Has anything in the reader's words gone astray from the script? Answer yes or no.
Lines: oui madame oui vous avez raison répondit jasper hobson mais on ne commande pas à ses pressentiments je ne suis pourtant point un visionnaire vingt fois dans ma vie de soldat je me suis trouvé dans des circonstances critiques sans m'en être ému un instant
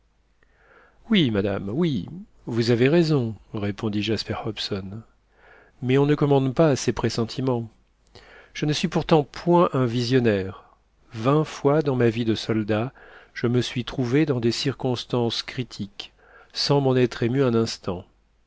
no